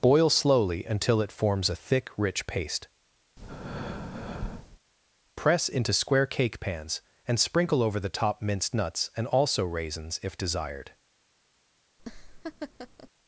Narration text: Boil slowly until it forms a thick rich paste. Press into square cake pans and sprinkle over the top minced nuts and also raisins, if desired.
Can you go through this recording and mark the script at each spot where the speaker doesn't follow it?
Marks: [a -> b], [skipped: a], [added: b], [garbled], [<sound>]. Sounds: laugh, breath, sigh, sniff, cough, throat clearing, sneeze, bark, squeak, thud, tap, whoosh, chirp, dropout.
Boil slowly until it forms a thick rich paste. [breath] Press into square cake pans and sprinkle over the top minced nuts and also raisins, if desired. [laugh]